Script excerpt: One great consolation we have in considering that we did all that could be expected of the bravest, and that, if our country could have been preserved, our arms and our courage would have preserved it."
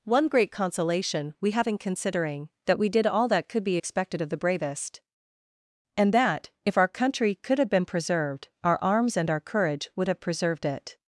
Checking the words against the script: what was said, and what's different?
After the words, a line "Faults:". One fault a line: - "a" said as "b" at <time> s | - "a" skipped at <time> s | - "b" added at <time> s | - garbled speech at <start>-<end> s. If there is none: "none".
One great consolation we have in considering that we did all that could be expected of the bravest, and that, if our country could have been preserved, our arms and our courage would have preserved it."
Faults:
none